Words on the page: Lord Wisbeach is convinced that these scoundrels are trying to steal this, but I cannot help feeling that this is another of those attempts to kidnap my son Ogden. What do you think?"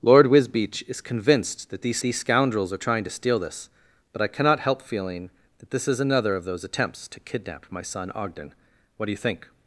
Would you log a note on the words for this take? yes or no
yes